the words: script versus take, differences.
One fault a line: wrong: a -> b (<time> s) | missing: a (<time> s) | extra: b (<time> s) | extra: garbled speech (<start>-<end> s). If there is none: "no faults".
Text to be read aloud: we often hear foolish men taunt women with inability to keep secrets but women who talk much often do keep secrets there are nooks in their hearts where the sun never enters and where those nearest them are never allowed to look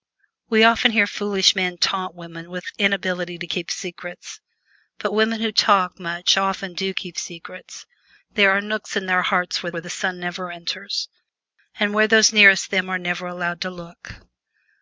extra: where (9.7 s)